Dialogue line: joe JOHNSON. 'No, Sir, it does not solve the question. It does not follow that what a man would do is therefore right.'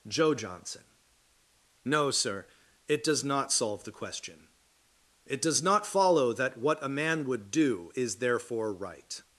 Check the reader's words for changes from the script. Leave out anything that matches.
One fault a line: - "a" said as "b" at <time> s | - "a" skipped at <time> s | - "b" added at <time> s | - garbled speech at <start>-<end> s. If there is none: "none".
none